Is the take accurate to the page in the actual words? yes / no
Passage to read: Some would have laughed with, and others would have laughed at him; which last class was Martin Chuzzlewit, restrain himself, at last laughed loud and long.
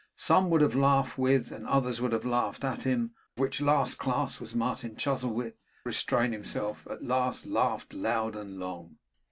yes